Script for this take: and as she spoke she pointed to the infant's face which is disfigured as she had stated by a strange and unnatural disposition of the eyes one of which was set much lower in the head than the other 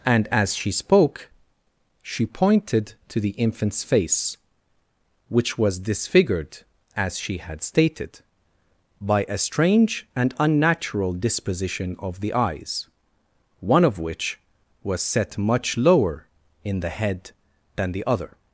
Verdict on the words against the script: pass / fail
fail